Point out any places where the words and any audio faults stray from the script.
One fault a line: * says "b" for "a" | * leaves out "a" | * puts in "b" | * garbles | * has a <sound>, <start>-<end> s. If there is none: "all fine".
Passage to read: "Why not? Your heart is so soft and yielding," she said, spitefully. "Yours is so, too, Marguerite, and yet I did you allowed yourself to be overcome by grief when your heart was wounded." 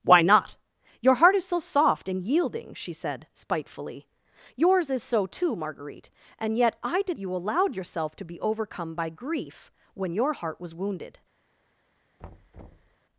* has a thud, 12.2-13.0 s